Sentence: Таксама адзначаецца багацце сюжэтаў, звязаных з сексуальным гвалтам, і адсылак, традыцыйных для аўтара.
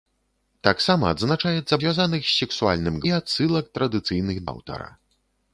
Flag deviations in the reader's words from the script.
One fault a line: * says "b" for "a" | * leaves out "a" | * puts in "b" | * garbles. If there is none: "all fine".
* leaves out "багацце сюжэтаў"
* leaves out "гвалтам"
* leaves out "для"